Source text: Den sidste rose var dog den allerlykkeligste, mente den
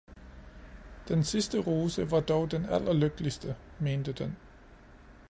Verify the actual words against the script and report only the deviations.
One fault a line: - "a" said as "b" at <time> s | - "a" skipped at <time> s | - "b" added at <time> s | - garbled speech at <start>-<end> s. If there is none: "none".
none